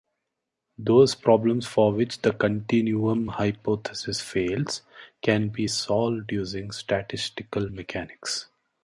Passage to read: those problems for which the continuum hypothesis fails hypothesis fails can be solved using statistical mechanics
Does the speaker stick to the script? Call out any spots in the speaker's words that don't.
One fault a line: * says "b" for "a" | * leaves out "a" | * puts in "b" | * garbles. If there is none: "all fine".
* leaves out "hypothesis fails"